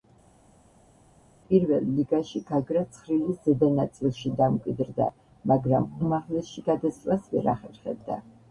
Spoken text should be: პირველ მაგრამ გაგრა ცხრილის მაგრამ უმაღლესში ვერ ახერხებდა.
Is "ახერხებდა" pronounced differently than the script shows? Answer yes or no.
no